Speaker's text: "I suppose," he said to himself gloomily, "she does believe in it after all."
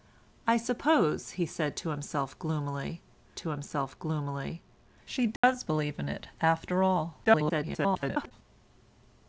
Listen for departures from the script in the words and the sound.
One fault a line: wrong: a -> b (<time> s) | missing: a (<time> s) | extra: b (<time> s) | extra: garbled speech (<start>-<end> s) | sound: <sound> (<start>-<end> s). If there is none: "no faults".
extra: to himself gloomily (3.4 s)
sound: dropout (5.4-5.4 s)
extra: garbled speech (7.2-8.3 s)